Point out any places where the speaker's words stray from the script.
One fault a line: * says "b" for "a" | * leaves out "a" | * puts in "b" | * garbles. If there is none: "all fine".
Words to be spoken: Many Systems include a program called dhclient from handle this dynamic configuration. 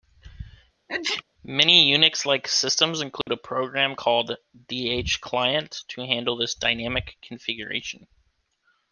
* puts in "Unix like"
* says "to" for "from"